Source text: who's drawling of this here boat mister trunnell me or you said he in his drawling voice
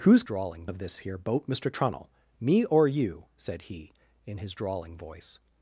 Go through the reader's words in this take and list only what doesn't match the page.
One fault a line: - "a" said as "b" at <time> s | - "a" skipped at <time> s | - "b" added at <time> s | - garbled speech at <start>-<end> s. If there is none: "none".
none